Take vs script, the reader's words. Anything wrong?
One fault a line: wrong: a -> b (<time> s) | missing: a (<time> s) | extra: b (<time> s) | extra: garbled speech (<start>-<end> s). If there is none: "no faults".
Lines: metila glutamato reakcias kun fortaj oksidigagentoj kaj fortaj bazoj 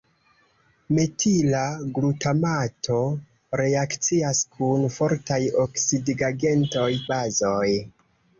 missing: kaj fortaj (6.9 s)